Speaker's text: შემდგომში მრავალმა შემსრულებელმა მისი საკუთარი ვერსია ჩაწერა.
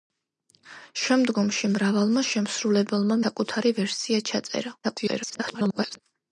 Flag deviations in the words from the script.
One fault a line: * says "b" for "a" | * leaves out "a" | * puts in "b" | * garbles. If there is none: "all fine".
* leaves out "მისი"
* garbles